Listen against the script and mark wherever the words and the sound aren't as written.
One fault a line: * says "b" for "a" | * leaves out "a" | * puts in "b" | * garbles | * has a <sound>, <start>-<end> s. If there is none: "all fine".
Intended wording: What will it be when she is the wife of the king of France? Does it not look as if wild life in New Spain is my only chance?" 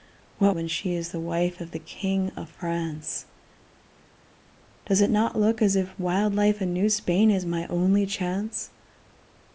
* leaves out "will it be"